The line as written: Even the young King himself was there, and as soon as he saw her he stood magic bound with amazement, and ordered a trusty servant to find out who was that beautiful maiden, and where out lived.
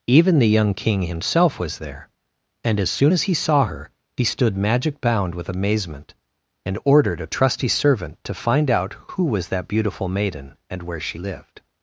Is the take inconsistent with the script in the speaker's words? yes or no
yes